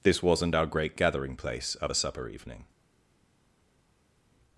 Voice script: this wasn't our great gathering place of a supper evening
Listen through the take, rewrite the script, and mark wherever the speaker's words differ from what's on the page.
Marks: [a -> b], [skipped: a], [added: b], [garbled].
this wasn't our great gathering place of a supper evening